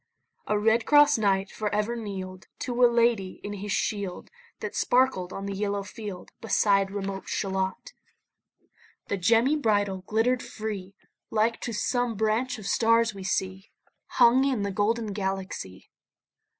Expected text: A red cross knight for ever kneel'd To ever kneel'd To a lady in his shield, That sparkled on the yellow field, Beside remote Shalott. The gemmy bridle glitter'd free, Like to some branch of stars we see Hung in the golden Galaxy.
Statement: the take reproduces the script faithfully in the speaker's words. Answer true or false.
false